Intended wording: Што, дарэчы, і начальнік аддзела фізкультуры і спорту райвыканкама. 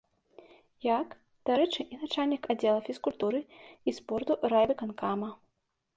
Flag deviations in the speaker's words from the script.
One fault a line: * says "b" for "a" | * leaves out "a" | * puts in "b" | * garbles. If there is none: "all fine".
* says "Як" for "Што"